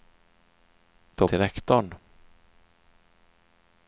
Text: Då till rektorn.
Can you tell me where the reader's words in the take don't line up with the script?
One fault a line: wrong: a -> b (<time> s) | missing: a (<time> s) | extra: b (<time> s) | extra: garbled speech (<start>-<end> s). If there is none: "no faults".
no faults